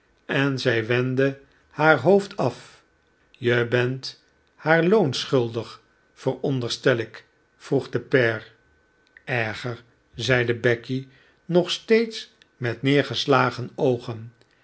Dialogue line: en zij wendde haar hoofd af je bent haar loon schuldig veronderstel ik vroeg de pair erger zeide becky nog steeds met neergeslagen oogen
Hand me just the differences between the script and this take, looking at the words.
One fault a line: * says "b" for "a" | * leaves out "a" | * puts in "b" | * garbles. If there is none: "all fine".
all fine